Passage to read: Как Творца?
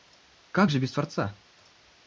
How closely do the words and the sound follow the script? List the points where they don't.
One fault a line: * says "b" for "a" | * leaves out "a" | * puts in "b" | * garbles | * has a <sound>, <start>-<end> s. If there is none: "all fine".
* puts in "же без"